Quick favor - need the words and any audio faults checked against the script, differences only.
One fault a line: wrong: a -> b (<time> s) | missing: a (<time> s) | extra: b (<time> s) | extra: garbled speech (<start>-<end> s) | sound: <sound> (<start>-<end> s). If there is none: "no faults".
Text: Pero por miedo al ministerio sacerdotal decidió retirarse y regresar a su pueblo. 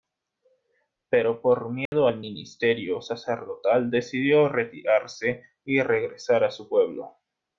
sound: dropout (1.9-1.9 s)